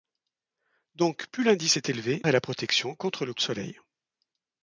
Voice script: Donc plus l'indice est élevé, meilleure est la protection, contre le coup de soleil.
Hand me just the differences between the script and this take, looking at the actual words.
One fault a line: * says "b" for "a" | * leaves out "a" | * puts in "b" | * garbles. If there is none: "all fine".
* leaves out "meilleure"
* leaves out "coup"